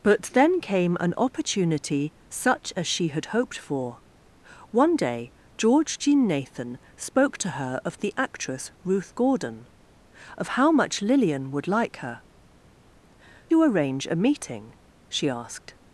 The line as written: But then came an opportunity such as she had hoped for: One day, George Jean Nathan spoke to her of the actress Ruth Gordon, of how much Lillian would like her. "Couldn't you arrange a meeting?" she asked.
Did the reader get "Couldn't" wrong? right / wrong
wrong